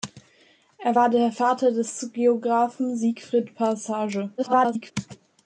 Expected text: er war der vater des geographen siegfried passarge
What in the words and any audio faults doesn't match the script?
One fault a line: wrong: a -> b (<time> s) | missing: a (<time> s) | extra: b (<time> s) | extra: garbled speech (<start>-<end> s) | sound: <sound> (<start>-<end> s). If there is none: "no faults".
extra: garbled speech (4.4-4.9 s)